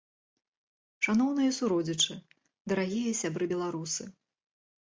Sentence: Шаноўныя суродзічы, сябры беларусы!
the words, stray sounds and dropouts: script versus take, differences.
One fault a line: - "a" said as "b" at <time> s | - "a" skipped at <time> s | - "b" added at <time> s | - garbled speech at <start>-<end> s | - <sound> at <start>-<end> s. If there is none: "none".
- "дарагія" added at 2.7 s